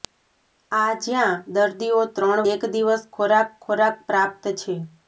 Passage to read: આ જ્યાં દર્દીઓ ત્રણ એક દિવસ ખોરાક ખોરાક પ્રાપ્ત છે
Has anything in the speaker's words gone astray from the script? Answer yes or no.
no